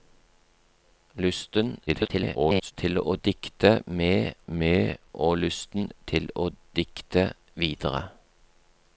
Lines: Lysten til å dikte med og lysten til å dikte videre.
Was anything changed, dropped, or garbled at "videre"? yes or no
no